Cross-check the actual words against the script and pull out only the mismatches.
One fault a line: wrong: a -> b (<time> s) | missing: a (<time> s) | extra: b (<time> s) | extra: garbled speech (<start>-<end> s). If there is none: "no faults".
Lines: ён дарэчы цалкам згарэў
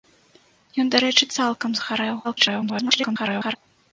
extra: garbled speech (2.2-3.6 s)